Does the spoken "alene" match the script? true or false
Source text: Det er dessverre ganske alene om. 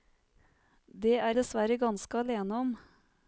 true